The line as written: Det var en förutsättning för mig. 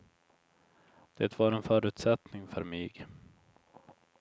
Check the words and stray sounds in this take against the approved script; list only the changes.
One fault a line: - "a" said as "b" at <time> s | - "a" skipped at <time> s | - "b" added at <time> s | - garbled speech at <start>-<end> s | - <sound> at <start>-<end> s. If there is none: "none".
none